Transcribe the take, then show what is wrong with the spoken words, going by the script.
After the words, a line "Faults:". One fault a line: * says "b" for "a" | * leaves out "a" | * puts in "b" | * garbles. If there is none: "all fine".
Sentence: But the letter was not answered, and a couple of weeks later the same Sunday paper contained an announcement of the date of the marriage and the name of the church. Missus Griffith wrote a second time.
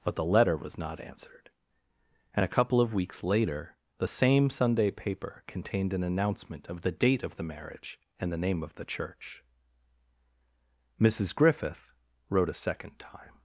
But the letter was not answered, and a couple of weeks later the same Sunday paper contained an announcement of the date of the marriage and the name of the church. Missus Griffith wrote a second time.
Faults:
all fine